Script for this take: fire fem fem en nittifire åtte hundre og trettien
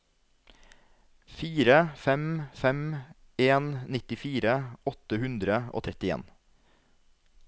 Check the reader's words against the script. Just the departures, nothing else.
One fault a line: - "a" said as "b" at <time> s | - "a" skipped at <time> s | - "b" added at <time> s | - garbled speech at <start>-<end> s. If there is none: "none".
none